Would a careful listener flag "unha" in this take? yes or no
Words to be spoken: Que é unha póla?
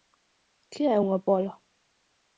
no